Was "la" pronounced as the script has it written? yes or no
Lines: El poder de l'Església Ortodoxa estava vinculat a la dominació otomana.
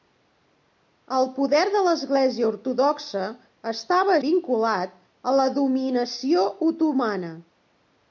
yes